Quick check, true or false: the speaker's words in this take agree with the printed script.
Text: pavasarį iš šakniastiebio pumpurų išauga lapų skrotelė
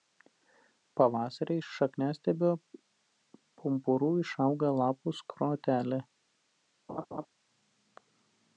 true